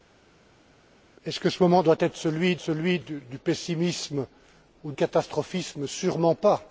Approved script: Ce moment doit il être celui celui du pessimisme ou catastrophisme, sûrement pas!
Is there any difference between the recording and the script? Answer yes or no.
no